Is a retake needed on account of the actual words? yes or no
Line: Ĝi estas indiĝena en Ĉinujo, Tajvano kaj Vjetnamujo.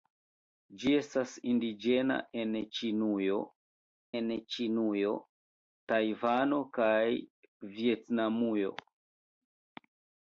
yes